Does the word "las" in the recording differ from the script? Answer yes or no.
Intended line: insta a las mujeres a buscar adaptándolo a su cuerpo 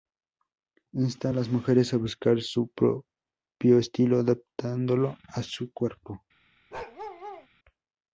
no